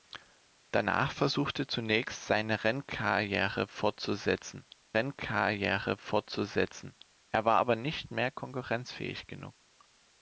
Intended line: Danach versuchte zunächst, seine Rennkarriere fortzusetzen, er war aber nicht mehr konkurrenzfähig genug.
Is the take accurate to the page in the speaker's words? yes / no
no